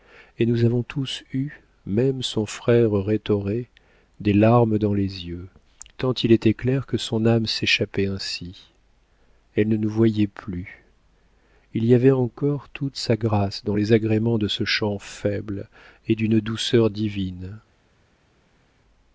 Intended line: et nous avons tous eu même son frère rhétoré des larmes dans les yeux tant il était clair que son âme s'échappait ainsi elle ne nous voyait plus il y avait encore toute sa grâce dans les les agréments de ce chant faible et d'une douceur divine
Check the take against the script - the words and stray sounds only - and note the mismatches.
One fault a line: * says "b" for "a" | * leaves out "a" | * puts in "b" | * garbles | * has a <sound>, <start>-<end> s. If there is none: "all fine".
* leaves out "les"